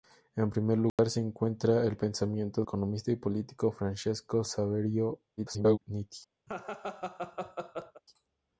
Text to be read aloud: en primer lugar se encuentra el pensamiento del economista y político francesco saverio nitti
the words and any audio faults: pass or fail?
fail